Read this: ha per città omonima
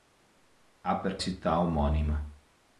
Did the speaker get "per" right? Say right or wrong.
right